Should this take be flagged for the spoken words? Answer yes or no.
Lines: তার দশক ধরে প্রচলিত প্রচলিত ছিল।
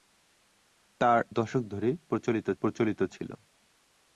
no